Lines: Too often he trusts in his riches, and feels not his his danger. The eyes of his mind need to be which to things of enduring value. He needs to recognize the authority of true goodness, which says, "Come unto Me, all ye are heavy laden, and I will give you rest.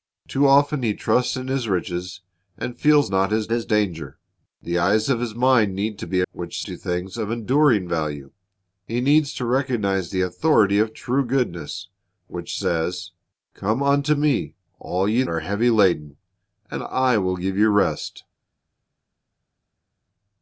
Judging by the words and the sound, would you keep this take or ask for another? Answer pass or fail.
pass